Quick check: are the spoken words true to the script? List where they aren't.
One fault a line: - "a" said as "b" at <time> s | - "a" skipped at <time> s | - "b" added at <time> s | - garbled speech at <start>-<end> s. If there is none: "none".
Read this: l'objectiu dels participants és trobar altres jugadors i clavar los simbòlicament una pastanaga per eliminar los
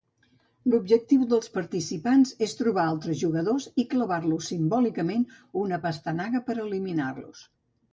none